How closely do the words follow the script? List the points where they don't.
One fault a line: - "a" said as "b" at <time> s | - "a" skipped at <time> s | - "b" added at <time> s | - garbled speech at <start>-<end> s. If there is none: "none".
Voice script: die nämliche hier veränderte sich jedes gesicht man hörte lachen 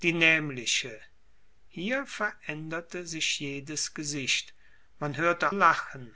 none